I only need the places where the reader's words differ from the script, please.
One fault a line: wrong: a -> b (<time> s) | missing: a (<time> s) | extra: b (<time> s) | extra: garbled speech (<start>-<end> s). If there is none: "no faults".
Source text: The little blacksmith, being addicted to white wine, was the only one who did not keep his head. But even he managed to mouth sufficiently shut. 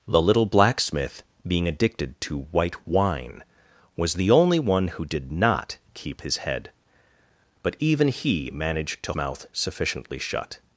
no faults